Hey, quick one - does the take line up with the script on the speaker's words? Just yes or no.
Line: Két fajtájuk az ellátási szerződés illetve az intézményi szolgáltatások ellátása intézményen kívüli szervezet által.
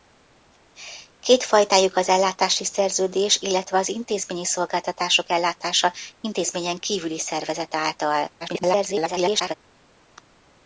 no